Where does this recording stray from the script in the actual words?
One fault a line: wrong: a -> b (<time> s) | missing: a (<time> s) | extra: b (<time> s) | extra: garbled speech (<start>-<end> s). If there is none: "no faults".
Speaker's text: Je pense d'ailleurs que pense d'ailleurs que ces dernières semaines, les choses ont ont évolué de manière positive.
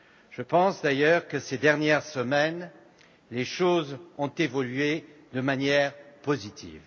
missing: pense d'ailleurs que (1.4 s)
missing: ont (4.3 s)